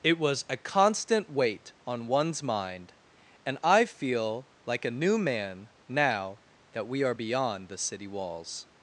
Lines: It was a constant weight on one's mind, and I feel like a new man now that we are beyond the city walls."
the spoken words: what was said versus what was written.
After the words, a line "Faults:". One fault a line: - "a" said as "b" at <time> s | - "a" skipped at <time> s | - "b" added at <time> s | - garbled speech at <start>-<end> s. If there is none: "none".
It was a constant weight on one's mind, and I feel like a new man now that we are beyond the city walls."
Faults:
none